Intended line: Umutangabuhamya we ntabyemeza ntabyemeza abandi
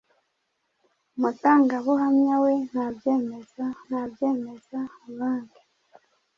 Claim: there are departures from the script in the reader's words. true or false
false